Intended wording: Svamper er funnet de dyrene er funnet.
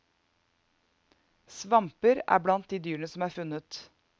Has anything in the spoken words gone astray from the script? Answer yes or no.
yes